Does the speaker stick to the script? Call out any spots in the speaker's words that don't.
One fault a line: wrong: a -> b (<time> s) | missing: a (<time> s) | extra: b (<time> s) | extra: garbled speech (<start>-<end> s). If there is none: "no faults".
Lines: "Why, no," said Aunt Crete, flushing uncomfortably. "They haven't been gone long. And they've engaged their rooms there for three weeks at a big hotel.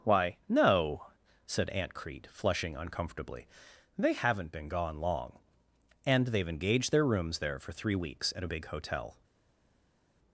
no faults